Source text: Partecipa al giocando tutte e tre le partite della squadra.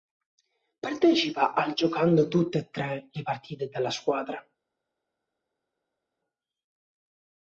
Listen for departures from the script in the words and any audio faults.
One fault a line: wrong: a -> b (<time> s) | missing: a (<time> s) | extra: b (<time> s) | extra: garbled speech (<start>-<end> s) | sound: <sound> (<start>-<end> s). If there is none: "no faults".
no faults